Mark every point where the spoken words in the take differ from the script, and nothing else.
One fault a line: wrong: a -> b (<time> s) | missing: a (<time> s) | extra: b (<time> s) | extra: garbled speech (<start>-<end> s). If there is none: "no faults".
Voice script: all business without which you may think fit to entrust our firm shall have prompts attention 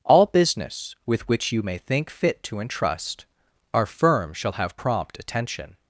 wrong: without -> with (1.1 s)
wrong: prompts -> prompt (4.8 s)